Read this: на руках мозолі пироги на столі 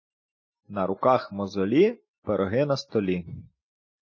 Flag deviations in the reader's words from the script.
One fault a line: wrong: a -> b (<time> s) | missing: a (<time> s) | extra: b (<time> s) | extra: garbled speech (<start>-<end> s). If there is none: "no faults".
no faults